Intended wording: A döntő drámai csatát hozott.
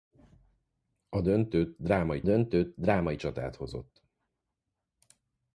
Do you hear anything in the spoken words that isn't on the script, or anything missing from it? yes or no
yes